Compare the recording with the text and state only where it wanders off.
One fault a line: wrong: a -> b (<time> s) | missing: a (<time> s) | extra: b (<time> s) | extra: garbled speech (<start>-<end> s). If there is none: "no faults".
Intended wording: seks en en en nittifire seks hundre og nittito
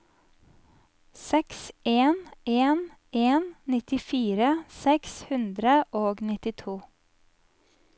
no faults